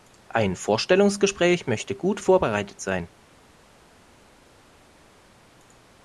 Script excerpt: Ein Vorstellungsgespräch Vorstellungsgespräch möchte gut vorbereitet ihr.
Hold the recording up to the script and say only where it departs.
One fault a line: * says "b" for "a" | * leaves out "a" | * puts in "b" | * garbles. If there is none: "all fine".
* leaves out "Vorstellungsgespräch"
* says "sein" for "ihr"